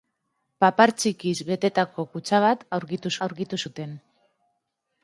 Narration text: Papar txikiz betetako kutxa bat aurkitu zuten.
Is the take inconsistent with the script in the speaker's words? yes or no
yes